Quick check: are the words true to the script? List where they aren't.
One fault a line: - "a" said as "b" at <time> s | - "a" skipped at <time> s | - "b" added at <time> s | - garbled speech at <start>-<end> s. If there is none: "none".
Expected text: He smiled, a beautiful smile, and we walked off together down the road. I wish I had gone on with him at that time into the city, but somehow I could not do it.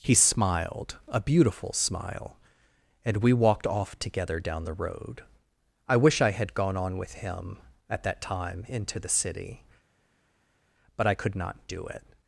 - "somehow" skipped at 11.0 s